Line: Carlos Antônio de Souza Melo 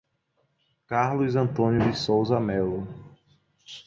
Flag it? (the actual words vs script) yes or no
no